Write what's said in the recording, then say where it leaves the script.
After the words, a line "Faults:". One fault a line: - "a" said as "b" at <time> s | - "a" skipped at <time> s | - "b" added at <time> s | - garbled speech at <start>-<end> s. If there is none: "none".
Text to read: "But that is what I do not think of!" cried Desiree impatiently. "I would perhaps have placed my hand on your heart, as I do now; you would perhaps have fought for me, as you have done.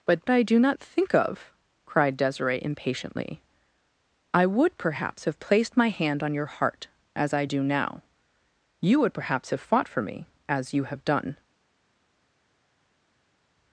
"But I do not think of!" cried Desiree impatiently. "I would perhaps have placed my hand on your heart, as I do now; you would perhaps have fought for me, as you have done.
Faults:
- "that is what" skipped at 0.2 s